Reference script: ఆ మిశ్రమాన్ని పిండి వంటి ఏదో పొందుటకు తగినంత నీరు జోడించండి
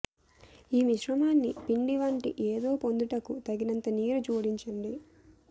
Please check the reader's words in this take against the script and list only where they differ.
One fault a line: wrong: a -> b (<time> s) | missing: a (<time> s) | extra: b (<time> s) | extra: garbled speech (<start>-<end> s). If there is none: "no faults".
wrong: ఆ -> ఈ (0.7 s)